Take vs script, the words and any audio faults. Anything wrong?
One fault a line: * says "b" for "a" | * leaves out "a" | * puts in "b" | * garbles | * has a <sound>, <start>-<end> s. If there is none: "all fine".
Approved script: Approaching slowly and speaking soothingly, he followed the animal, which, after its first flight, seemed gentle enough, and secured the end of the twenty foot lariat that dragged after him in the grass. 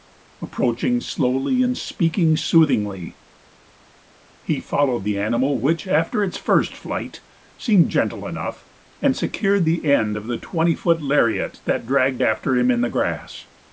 all fine